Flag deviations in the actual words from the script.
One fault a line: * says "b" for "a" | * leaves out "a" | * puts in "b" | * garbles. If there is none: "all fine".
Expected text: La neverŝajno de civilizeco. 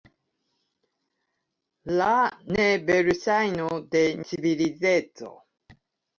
all fine